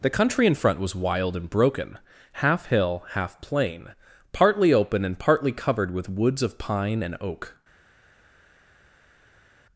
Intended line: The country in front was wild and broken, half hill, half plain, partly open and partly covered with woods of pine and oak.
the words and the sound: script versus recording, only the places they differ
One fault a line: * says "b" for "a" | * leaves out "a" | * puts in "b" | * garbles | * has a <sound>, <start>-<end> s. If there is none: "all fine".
all fine